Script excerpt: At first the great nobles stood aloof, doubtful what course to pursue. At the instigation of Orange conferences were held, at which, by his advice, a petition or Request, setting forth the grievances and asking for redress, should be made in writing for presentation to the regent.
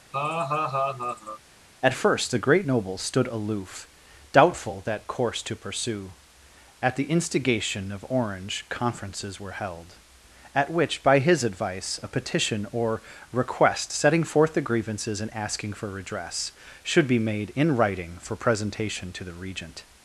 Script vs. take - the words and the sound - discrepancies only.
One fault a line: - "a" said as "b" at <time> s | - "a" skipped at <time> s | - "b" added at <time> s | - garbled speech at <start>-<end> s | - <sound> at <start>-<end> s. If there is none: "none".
- laugh at 0.1-1.4 s
- "what" said as "that" at 4.9 s